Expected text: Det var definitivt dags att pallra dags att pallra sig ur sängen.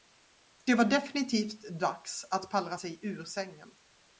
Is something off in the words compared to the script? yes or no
yes